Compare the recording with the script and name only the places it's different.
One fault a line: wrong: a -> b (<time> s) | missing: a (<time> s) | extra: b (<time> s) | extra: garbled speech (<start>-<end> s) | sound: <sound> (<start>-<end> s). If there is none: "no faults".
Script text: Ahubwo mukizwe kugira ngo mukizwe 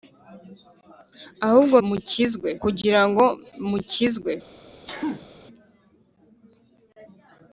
sound: sneeze (4.9-5.3 s)